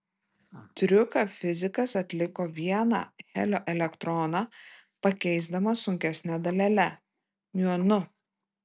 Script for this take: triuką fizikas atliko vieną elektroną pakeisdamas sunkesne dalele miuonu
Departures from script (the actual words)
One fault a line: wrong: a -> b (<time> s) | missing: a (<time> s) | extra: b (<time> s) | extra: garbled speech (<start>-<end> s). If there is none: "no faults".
extra: helio (3.3 s)